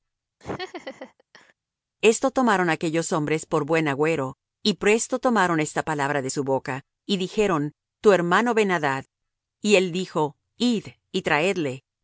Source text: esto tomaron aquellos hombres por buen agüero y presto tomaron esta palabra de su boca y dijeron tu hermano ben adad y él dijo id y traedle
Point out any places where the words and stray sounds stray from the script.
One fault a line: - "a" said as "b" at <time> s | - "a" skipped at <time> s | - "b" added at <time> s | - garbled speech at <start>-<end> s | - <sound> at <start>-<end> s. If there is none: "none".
- laugh at 0.4-1.5 s